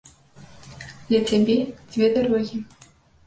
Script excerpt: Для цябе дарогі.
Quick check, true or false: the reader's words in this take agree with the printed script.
false